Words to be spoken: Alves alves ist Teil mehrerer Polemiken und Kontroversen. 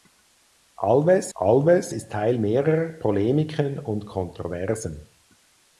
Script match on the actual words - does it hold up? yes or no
yes